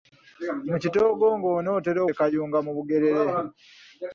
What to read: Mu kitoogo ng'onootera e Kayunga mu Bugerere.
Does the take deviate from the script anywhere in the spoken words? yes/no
no